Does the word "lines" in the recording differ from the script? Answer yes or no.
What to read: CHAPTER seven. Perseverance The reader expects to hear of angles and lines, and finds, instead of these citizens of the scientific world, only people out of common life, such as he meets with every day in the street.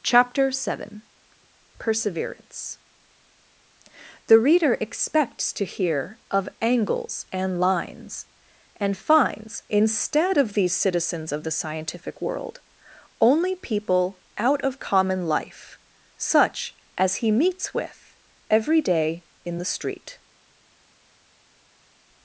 no